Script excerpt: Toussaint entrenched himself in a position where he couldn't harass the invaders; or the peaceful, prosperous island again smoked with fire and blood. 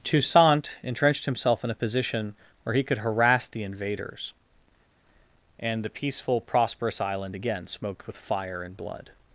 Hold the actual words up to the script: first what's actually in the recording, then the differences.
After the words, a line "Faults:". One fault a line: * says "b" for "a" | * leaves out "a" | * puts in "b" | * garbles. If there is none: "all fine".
Toussaint entrenched himself in a position where he could harass the invaders; and the peaceful, prosperous island again smoked with fire and blood.
Faults:
* says "could" for "couldn't"
* says "and" for "or"